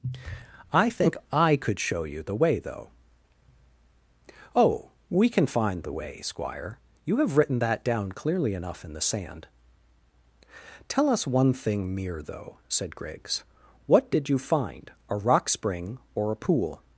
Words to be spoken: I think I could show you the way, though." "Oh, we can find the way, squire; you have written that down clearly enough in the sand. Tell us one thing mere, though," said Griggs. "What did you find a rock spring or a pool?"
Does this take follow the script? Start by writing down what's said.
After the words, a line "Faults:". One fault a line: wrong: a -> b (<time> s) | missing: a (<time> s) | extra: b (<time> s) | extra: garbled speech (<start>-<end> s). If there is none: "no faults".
I think I could show you the way, though." "Oh, we can find the way, squire; you have written that down clearly enough in the sand. Tell us one thing mere, though," said Griggs. "What did you find a rock spring or a pool?"
Faults:
no faults